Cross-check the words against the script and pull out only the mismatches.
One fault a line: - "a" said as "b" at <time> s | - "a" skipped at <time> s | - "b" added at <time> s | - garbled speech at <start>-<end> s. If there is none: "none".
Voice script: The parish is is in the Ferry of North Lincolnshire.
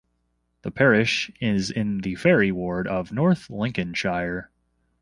- "is" skipped at 1.7 s
- "ward" added at 2.5 s